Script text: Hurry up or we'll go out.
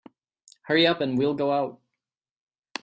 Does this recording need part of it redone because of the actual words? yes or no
yes